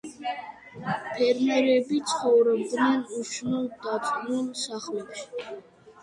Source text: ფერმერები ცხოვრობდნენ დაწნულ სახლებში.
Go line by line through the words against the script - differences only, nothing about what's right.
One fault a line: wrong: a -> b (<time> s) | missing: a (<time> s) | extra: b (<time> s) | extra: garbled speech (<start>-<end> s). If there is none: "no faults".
extra: უშნო (3.2 s)